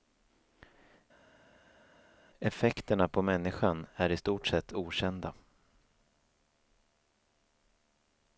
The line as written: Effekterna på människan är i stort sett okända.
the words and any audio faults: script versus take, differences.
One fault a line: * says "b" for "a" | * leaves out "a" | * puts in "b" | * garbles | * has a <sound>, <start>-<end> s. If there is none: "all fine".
all fine